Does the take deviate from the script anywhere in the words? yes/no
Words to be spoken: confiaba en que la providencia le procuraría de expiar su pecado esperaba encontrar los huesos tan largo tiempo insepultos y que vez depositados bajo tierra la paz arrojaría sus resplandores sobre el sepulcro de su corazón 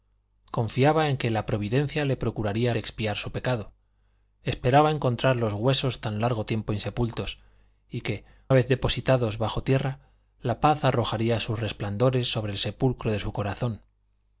no